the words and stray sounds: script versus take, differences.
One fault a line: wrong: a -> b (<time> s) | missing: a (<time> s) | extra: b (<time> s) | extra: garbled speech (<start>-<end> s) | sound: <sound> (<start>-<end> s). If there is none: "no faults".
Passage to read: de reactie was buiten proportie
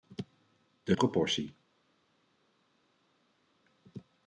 missing: reactie was buiten (0.9 s)